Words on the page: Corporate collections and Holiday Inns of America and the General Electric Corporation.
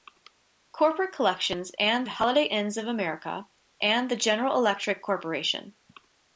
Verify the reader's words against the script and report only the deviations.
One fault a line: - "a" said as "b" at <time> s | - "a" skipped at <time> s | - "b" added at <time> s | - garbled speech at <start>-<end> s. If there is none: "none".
none